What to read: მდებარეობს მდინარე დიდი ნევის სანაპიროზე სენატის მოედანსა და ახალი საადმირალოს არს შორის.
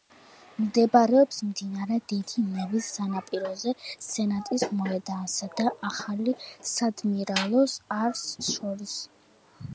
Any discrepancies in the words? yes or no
no